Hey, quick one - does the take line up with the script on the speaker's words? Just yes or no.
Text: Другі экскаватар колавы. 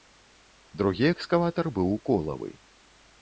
no